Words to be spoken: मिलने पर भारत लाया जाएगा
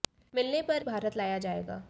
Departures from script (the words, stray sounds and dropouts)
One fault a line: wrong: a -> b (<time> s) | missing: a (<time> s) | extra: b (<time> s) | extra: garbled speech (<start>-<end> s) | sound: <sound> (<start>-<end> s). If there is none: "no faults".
no faults